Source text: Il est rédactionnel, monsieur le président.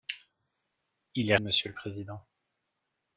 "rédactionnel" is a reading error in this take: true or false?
true